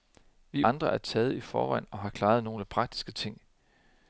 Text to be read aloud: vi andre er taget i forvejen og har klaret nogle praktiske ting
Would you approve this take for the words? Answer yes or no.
yes